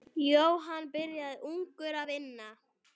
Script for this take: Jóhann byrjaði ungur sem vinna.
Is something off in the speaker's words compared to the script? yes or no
yes